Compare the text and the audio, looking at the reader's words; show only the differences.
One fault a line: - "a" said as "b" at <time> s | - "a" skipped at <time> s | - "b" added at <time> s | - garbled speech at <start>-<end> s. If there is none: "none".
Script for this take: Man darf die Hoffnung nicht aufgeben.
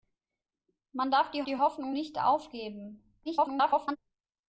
- "die" added at 1.4 s
- garbled speech at 3.3-4.0 s